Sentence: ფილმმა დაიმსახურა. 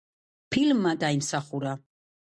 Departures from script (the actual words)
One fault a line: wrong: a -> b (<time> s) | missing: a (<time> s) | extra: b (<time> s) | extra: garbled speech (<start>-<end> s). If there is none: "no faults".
no faults